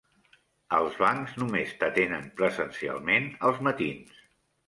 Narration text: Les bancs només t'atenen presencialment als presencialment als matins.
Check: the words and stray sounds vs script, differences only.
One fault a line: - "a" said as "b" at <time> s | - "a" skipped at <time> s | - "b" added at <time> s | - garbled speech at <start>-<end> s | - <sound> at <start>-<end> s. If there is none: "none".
- "Les" said as "Els" at 0.8 s
- "presencialment als" skipped at 3.6 s